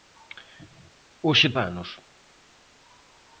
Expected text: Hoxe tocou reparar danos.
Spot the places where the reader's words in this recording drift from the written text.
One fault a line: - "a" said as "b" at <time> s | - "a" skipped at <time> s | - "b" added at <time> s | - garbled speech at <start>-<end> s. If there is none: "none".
- "tocou reparar" skipped at 1.5 s